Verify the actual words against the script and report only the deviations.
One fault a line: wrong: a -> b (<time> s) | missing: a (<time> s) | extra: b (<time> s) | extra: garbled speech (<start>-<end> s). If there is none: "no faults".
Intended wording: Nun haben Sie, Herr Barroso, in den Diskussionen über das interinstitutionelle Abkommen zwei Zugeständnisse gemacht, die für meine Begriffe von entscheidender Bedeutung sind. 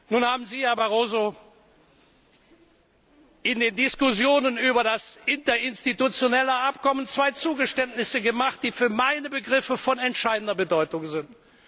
no faults